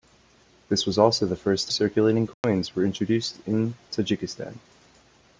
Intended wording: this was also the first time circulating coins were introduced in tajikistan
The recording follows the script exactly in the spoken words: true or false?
false